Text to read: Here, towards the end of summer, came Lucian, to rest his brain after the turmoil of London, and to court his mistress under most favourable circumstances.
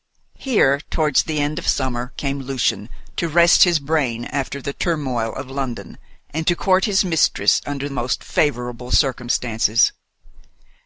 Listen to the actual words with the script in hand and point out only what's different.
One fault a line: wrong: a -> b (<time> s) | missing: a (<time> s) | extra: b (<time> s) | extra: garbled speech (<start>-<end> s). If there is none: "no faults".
no faults